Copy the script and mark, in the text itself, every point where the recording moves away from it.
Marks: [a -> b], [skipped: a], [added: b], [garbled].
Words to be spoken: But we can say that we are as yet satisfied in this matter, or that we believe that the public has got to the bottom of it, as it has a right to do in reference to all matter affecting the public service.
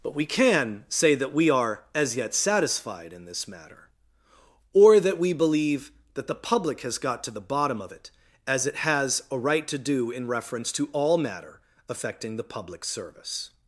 But we can say that we are as yet satisfied in this matter, or that we believe that the public has got to the bottom of it, as it has a right to do in reference to all matter affecting the public service.